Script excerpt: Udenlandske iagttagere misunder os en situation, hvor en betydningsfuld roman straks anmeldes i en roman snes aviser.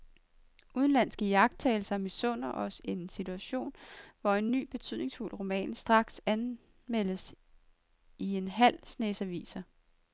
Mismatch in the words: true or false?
true